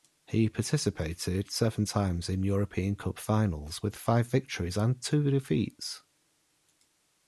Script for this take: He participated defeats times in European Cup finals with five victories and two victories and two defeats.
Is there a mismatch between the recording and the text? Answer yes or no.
yes